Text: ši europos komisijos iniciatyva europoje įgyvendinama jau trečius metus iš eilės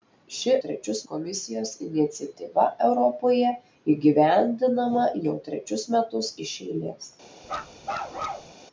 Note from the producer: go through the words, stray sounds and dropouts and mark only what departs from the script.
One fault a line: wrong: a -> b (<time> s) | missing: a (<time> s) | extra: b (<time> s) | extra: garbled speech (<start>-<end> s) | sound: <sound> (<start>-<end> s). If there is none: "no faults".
wrong: europos -> trečius (0.7 s)
sound: bark (7.4-8.5 s)